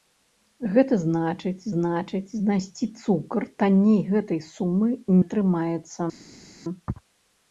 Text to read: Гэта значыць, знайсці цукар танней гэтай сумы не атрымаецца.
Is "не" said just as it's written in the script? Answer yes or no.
no